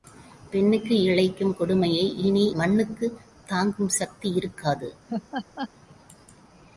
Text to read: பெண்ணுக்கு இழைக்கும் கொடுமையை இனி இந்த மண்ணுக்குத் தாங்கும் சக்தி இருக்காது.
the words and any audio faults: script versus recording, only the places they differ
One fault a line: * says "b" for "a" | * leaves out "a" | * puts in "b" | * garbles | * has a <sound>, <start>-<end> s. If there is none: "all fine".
* leaves out "இந்த"
* has a laugh, 5.1-5.7 s